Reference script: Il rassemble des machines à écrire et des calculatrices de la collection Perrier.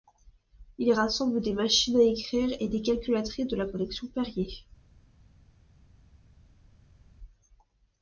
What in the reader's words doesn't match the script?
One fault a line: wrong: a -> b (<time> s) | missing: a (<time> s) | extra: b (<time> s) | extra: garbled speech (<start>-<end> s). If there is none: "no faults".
no faults